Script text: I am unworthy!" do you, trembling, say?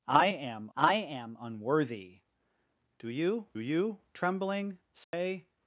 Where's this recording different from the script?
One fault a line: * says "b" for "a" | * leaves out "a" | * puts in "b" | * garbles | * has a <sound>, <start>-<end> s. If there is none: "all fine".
* puts in "I am"
* puts in "you"
* has a dropout, 5.0-5.1 s